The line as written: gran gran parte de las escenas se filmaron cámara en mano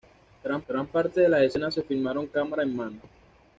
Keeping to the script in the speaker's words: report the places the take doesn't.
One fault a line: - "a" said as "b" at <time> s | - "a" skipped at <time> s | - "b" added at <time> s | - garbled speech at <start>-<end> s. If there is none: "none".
none